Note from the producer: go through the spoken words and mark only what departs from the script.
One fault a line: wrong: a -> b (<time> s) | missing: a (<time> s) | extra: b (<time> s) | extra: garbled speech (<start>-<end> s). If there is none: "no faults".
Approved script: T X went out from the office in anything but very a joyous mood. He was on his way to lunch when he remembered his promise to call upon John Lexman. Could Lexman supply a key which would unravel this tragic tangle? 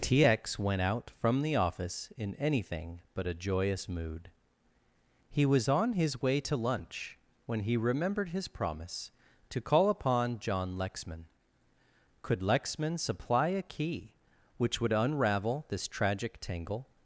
missing: very (3.3 s)